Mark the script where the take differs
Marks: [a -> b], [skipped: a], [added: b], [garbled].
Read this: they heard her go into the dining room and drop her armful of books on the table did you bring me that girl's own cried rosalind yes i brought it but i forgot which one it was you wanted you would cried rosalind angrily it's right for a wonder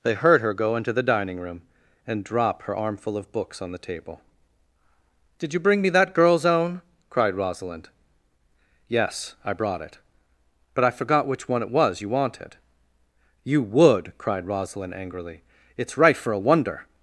they heard her go into the dining room and drop her armful of books on the table did you bring me that girl's own cried rosalind yes i brought it but i forgot which one it was you wanted you would cried rosalind angrily it's right for a wonder